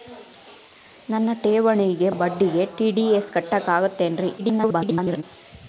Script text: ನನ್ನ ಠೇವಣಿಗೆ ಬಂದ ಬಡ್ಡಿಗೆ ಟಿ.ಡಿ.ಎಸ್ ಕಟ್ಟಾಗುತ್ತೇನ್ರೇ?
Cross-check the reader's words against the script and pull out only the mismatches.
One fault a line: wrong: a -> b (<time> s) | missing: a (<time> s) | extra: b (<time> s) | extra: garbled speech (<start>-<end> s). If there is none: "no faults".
missing: ಬಂದ (2.1 s)
extra: garbled speech (4.4-5.2 s)